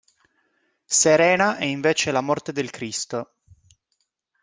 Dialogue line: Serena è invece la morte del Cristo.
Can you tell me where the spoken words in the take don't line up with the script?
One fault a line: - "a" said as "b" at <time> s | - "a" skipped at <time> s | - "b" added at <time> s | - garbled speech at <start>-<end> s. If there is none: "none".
none